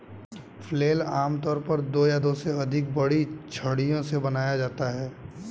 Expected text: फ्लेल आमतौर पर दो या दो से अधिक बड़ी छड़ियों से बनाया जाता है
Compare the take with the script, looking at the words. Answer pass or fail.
pass